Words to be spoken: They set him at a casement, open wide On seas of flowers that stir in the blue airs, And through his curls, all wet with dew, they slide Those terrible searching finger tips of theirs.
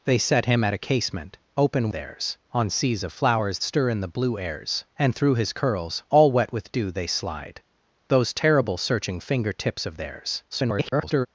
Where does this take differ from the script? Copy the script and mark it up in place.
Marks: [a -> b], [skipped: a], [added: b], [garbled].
They set him at a casement, open [wide -> theirs] On seas of flowers [skipped: that] stir in the blue airs, And through his curls, all wet with dew, they slide Those terrible searching finger tips of theirs. [garbled]